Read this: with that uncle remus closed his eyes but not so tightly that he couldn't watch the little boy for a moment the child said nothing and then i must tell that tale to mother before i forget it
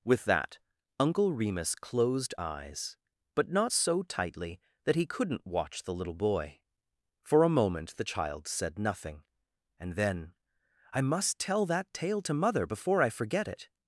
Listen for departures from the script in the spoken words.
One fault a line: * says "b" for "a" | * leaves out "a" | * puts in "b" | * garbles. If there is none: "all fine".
* leaves out "his"